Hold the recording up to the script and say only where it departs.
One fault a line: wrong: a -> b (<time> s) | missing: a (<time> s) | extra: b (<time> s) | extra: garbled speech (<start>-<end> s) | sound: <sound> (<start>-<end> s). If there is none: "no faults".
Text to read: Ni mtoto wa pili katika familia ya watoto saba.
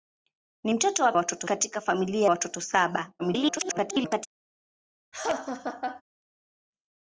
wrong: pili -> watoto (1.1 s)
missing: ya (2.3 s)
extra: garbled speech (3.2-4.3 s)
sound: laugh (5.1-6.0 s)